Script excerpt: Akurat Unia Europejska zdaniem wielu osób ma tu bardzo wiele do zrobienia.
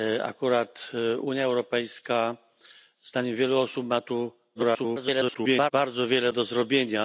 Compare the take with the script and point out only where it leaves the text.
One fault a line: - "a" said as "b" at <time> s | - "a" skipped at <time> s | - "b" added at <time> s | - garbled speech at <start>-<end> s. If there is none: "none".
- garbled speech at 4.5-5.7 s